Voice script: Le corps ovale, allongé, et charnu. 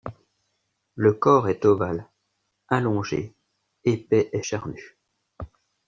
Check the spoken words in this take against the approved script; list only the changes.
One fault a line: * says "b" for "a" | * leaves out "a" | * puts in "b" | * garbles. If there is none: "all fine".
* puts in "est"
* puts in "épais"